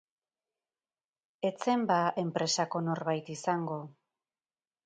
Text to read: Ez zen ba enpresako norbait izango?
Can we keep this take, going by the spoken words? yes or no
yes